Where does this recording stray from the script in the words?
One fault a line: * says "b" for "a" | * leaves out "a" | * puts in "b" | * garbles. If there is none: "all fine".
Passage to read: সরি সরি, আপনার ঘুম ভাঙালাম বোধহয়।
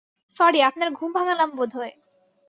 * leaves out "সরি"